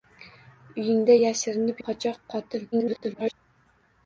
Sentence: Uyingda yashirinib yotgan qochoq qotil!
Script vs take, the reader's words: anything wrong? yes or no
yes